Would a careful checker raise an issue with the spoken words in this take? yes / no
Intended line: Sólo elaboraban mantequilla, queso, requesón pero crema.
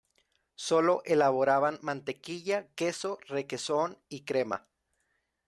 yes